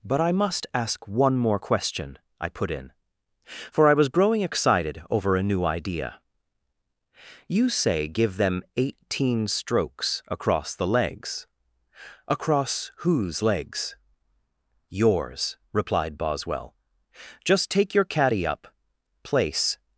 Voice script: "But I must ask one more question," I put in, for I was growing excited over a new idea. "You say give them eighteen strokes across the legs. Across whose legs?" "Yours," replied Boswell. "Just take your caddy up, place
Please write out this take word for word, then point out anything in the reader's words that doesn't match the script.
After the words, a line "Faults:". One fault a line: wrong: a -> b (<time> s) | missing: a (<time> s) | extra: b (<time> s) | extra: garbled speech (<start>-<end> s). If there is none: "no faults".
"But I must ask one more question," I put in, for I was growing excited over a new idea. "You say give them eighteen strokes across the legs. Across whose legs?" "Yours," replied Boswell. "Just take your caddy up, place
Faults:
no faults